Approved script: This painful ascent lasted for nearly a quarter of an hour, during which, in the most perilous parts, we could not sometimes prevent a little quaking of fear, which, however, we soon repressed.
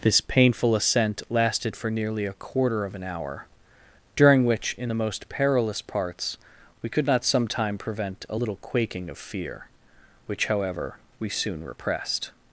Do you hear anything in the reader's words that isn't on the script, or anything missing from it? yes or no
yes